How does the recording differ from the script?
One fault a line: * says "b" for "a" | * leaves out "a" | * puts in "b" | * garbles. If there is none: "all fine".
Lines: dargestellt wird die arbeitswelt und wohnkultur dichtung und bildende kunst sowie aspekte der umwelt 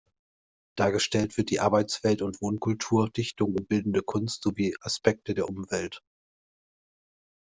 all fine